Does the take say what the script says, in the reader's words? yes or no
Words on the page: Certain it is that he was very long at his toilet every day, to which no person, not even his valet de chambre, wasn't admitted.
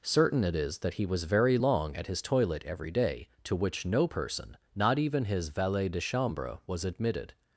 no